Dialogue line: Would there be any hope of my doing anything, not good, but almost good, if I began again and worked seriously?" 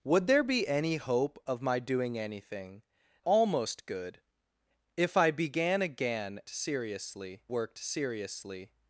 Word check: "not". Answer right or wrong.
wrong